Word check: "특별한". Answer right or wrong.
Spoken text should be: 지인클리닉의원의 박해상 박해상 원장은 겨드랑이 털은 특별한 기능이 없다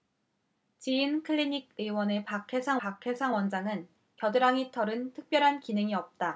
right